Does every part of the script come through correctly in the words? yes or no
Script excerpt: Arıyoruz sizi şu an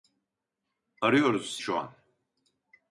no